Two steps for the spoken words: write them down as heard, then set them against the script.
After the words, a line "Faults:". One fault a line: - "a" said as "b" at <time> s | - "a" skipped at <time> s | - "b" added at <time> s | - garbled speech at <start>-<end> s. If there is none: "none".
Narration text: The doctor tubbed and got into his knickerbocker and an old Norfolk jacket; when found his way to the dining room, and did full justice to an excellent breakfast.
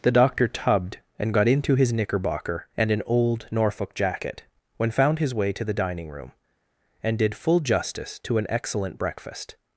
The doctor tubbed and got into his knickerbocker and an old Norfolk jacket; when found his way to the dining room, and did full justice to an excellent breakfast.
Faults:
none